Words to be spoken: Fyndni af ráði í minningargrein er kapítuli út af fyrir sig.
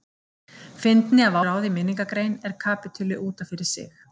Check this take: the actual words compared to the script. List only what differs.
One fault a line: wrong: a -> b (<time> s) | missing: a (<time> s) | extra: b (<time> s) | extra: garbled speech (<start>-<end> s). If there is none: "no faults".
no faults